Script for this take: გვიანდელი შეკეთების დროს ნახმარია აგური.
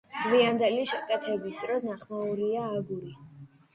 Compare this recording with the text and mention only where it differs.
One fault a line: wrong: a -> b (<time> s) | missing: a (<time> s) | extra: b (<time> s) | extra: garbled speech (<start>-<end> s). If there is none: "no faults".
no faults